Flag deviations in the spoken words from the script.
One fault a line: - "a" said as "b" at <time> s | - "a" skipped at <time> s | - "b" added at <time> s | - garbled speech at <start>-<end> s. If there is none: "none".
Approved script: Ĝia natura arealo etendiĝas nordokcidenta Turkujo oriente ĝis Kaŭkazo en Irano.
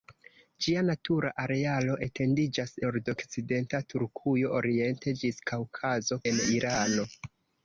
none